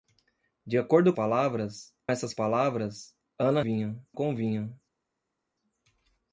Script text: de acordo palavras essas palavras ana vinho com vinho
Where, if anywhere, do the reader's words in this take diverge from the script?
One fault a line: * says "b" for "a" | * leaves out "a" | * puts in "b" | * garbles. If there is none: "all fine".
all fine